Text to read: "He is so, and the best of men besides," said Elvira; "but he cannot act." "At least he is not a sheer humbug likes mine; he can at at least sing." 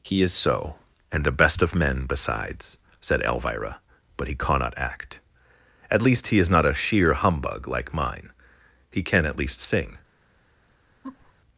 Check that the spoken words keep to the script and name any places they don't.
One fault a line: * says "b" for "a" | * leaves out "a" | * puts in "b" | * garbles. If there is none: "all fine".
* says "like" for "likes"
* leaves out "at"